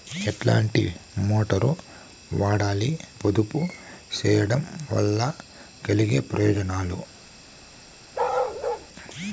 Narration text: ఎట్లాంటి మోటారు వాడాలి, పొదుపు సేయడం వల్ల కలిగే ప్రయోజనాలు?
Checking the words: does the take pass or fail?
pass